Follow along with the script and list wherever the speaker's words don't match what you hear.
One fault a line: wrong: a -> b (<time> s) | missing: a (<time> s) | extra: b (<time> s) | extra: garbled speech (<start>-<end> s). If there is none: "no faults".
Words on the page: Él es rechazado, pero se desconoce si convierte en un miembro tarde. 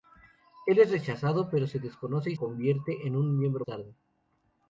no faults